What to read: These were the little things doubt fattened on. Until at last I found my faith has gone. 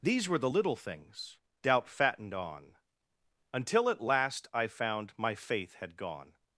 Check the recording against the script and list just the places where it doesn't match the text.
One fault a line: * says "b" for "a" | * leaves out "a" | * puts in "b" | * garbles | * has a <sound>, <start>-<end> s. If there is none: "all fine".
* says "had" for "has"